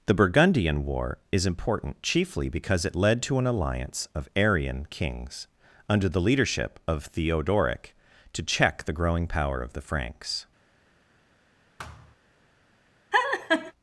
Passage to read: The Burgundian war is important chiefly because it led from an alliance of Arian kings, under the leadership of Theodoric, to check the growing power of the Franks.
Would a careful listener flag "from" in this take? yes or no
yes